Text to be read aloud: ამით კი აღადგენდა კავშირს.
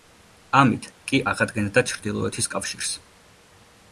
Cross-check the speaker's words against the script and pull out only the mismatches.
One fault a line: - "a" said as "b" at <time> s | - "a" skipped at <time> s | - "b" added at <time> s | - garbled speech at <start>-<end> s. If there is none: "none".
- "ჩრდილოეთის" added at 1.9 s